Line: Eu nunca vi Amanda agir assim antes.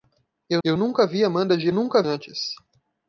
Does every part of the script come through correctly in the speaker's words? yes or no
no